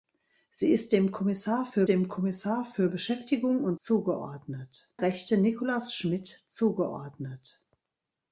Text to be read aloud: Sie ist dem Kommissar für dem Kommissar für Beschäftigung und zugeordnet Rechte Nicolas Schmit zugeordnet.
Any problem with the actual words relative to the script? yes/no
no